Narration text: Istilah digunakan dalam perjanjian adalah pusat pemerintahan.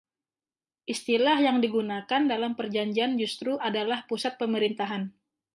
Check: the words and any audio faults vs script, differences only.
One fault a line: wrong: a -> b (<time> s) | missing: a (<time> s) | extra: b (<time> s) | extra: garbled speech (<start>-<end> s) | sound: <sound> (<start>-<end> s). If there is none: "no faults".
extra: yang (1.4 s)
extra: justru (3.2 s)